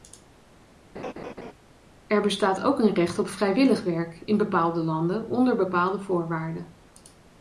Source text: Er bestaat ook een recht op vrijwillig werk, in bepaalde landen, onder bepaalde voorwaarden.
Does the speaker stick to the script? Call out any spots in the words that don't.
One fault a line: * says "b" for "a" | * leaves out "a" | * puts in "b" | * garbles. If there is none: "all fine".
all fine